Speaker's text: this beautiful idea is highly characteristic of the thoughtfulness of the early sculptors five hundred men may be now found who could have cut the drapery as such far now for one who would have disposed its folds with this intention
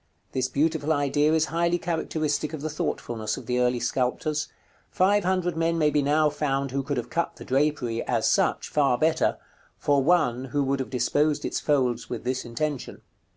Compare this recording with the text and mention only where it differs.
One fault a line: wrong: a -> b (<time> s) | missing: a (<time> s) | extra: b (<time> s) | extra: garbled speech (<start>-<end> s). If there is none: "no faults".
wrong: now -> better (9.0 s)